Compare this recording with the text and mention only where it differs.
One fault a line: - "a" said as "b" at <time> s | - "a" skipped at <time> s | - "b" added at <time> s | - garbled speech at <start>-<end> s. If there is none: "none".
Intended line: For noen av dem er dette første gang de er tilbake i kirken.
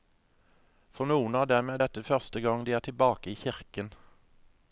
none